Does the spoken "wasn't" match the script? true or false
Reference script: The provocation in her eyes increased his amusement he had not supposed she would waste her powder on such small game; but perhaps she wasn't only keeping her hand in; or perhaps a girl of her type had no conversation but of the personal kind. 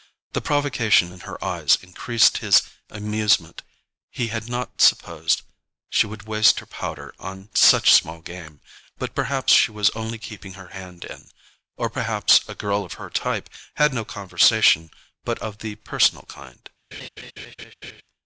false